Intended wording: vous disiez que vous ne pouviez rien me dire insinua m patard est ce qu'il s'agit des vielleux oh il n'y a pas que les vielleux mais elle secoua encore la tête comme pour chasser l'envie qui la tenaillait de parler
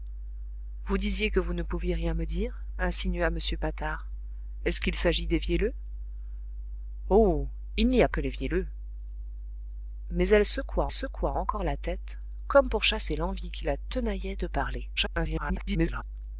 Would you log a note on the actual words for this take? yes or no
yes